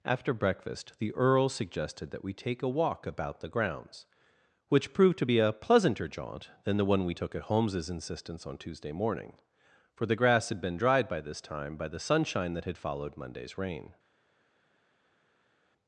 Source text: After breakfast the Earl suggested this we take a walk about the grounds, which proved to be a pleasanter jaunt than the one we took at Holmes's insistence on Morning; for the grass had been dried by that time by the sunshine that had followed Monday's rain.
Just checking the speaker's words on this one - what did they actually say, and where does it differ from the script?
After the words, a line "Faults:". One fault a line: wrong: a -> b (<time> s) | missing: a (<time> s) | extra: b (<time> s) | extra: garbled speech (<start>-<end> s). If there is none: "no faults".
After breakfast the Earl suggested that we take a walk about the grounds, which proved to be a pleasanter jaunt than the one we took at Holmes's insistence on Tuesday morning; for the grass had been dried by this time by the sunshine that had followed Monday's rain.
Faults:
wrong: this -> that (2.1 s)
extra: Tuesday (8.6 s)
wrong: that -> this (11.2 s)